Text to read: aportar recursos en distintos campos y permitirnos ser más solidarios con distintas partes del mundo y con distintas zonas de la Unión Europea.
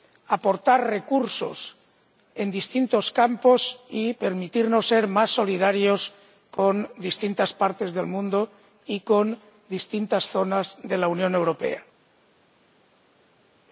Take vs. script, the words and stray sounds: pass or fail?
pass